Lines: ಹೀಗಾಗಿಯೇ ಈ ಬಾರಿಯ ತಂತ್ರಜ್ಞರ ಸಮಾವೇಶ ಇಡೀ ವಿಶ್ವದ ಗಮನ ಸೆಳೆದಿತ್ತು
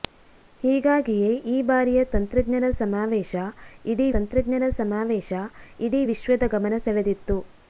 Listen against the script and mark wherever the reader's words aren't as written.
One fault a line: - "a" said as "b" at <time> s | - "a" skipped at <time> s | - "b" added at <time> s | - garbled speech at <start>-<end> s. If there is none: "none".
- "ತಂತ್ರಜ್ಞರ ಸಮಾವೇಶ ಇಡೀ" added at 4.1 s